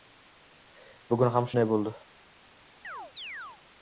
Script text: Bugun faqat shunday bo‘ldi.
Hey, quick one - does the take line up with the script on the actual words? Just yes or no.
no